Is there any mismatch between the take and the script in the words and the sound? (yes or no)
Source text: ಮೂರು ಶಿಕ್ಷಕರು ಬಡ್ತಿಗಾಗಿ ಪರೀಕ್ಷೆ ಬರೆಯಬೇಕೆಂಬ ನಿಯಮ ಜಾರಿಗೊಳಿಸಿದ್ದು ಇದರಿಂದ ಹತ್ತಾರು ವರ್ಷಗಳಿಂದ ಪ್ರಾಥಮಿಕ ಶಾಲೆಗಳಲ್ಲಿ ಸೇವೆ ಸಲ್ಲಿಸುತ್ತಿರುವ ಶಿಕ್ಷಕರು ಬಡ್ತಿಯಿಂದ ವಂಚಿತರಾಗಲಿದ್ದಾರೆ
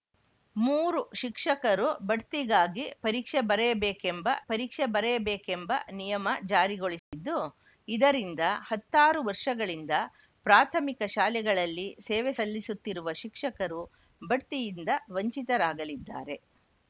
yes